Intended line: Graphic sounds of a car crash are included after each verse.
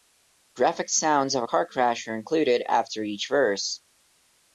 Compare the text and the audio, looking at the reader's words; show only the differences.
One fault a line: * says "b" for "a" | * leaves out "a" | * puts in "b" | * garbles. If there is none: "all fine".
all fine